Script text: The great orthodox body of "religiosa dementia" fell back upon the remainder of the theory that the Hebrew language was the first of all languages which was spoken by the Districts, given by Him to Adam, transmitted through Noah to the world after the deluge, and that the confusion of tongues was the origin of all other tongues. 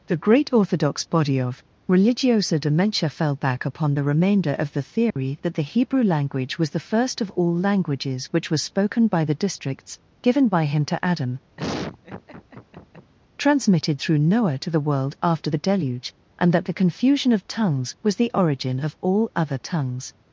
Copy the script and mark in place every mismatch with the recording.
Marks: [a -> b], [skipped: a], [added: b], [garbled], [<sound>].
The great orthodox body of "religiosa dementia" fell back upon the remainder of the theory [dropout] that the Hebrew language was the first of all languages which was spoken by the Districts, given by Him to Adam, [laugh] transmitted through Noah to the world after the deluge, and that the confusion of tongues was the origin of all other tongues.